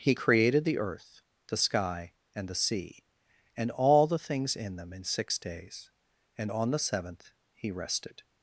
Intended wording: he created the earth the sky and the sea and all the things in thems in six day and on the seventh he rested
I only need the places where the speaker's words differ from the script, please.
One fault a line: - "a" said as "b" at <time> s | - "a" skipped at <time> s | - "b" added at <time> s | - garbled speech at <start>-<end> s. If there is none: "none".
- "thems" said as "them" at 4.8 s
- "day" said as "days" at 5.4 s